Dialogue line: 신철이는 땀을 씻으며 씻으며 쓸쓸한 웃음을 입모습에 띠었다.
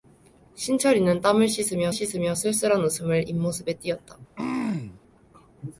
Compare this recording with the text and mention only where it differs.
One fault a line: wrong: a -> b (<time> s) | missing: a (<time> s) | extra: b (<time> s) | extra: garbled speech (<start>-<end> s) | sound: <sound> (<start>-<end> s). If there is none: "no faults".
sound: throat clearing (4.4-5.0 s)